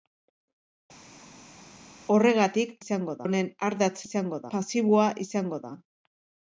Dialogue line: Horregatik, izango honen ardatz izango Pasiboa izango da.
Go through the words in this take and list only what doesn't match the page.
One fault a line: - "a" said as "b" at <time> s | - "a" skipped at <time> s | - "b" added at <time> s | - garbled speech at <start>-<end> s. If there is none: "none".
none